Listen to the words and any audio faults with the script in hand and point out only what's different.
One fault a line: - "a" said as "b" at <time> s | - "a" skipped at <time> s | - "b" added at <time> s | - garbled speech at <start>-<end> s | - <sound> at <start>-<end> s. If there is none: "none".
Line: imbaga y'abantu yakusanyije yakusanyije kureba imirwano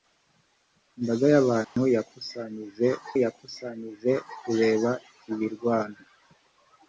- dropout at 1.6-1.8 s